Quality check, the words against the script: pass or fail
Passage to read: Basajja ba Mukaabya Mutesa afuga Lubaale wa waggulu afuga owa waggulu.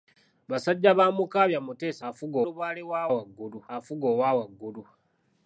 pass